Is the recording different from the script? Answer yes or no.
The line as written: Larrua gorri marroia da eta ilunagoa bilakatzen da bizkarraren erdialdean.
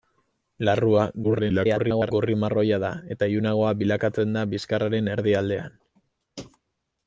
yes